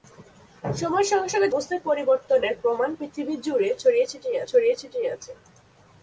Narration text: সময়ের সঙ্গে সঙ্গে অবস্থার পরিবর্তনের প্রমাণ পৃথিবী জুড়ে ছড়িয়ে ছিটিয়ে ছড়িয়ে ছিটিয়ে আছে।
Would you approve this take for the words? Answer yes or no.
yes